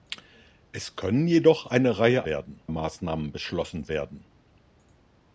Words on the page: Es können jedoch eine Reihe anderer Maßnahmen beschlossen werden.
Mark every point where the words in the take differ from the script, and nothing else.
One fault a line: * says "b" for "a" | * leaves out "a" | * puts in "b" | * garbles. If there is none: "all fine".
* says "werden" for "anderer"